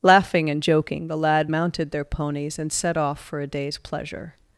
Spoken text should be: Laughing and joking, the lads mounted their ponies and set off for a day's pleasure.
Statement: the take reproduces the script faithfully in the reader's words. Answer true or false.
false